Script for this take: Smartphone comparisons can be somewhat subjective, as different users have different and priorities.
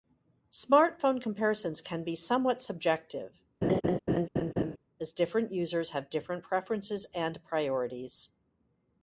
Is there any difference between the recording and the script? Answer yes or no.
yes